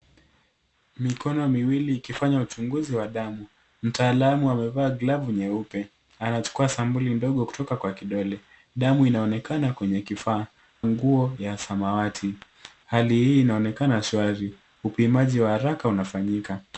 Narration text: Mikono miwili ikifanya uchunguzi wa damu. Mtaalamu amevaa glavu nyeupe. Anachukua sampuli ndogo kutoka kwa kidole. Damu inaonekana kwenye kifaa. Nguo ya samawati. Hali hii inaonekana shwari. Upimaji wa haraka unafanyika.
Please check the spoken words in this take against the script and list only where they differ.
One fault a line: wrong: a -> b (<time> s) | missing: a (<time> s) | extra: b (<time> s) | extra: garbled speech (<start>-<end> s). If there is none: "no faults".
no faults